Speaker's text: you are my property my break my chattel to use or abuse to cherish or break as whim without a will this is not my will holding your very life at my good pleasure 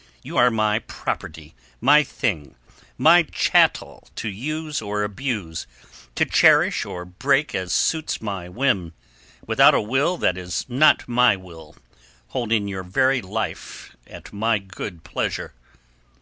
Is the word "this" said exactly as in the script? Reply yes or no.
no